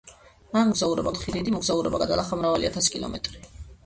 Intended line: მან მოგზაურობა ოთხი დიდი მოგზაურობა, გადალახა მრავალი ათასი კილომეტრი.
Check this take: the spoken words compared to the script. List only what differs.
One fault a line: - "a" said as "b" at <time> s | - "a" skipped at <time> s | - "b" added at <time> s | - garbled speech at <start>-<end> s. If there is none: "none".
none